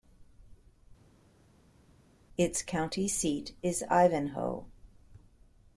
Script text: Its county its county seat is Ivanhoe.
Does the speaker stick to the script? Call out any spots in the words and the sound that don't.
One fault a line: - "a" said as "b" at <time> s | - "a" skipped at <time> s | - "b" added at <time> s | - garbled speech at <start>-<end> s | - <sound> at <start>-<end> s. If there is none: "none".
- "its county" skipped at 3.1 s